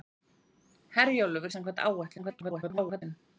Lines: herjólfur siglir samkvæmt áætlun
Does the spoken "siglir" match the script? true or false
false